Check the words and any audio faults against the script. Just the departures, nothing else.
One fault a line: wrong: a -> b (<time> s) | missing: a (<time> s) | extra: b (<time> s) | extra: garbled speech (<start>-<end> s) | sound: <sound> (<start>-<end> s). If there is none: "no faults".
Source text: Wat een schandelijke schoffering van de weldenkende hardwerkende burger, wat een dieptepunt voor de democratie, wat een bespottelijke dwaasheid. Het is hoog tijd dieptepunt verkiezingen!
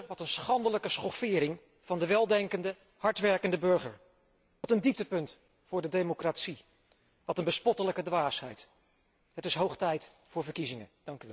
wrong: dieptepunt -> voor (10.3 s)